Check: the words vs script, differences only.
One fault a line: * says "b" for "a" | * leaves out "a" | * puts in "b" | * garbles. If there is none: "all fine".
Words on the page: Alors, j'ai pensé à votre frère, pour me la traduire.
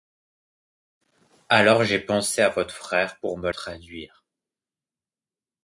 * leaves out "la"